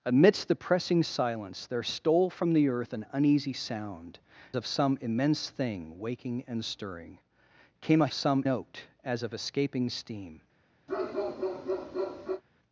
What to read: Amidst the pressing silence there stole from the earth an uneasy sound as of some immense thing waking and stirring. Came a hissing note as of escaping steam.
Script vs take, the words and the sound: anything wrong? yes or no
yes